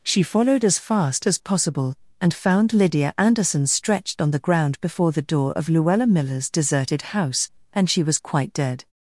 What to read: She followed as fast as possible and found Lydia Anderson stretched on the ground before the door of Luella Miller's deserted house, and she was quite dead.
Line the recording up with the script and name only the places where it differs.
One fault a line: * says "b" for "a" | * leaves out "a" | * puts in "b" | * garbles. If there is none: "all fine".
all fine